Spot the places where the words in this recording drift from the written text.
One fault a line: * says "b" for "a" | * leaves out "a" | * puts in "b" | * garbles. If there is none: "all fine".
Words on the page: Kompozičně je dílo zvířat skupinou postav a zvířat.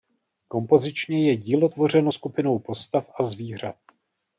* says "tvořeno" for "zvířat"